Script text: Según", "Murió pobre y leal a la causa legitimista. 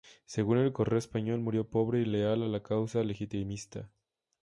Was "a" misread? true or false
false